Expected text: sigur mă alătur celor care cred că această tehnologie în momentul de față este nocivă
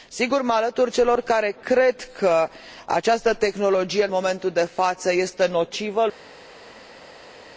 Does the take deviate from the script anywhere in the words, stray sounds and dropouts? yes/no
no